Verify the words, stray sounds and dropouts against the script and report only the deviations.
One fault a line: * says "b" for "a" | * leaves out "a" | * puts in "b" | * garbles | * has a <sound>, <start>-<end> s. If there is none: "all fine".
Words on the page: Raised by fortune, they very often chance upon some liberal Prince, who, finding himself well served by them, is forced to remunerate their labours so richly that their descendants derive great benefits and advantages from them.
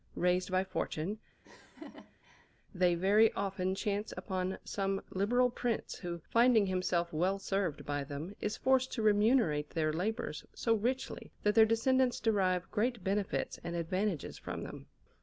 * has a laugh, 1.4-2.5 s